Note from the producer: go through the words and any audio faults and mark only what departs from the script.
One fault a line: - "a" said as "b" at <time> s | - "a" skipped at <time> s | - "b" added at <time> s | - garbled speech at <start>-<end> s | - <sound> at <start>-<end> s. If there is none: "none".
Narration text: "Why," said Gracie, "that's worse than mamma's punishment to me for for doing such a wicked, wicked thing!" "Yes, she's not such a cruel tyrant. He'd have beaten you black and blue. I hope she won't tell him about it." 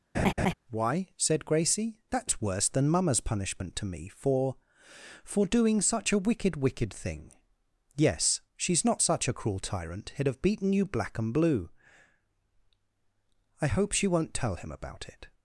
- laugh at 0.1-0.5 s